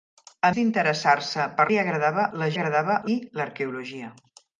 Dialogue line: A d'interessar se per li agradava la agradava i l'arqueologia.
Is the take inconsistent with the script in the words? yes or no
no